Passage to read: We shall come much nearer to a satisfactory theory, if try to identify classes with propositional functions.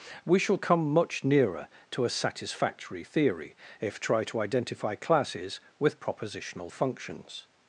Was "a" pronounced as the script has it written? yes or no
yes